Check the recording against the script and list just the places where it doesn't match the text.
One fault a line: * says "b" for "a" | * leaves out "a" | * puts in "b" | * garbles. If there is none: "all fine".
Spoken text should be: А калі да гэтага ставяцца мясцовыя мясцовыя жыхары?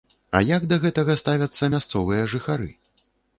* says "як" for "калі"
* leaves out "мясцовыя"